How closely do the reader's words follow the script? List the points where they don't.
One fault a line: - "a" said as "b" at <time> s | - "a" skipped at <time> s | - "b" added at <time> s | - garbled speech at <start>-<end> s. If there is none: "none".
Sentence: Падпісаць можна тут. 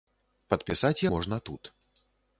none